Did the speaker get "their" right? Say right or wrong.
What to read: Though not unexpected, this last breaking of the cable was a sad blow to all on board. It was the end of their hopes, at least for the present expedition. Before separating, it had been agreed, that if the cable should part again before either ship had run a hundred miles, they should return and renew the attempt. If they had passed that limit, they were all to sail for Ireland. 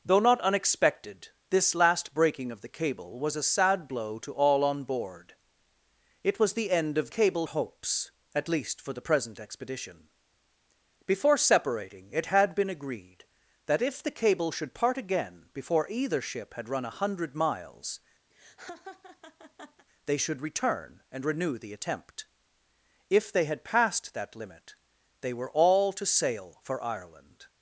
wrong